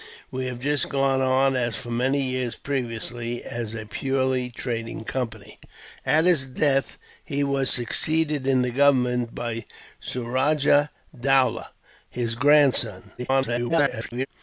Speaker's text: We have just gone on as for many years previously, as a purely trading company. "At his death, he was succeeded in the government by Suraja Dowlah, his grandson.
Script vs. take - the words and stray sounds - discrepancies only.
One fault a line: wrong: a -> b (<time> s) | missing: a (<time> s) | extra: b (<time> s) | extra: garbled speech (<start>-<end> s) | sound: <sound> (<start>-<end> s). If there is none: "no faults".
extra: garbled speech (13.2-14.3 s)